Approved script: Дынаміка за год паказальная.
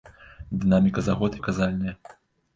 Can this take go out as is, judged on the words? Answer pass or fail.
pass